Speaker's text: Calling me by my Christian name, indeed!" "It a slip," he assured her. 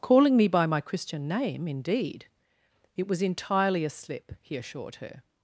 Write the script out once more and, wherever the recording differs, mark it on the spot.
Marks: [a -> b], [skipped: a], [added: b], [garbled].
Calling me by my Christian name, indeed!" "It [added: was entirely] a slip," he assured her.